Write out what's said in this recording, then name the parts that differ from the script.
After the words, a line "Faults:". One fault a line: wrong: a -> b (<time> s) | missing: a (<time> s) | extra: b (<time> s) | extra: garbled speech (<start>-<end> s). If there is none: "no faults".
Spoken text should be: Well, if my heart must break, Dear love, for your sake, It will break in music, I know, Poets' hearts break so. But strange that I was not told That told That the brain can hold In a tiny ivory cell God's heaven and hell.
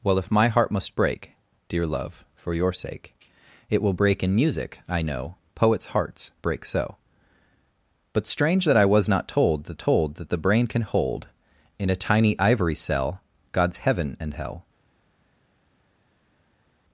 Well, if my heart must break, Dear love, for your sake, It will break in music, I know, Poets' hearts break so. But strange that I was not told That told That the brain can hold In a tiny ivory cell God's heaven and hell.
Faults:
no faults